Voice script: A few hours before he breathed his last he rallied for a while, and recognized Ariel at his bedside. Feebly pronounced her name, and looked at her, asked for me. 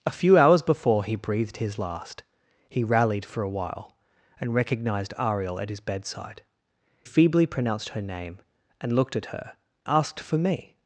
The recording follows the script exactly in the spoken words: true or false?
true